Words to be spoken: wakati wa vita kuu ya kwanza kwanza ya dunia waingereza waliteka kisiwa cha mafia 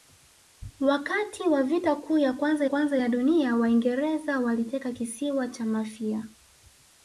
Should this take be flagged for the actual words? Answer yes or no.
no